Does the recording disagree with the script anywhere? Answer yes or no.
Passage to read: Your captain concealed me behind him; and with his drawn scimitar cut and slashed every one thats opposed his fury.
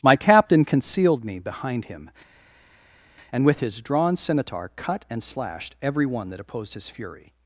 yes